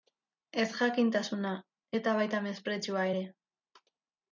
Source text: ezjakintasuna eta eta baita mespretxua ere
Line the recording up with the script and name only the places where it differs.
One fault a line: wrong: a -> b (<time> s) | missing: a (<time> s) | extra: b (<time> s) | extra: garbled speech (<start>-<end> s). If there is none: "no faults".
missing: eta (2.2 s)